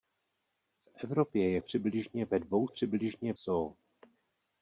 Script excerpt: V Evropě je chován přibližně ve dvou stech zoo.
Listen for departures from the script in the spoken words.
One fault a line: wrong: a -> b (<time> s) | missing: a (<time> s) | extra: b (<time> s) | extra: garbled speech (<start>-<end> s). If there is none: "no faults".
missing: chován (1.6 s)
wrong: stech -> přibližně (2.7 s)